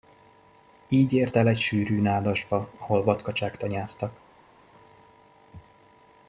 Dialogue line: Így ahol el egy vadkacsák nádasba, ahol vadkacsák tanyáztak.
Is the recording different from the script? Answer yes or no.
yes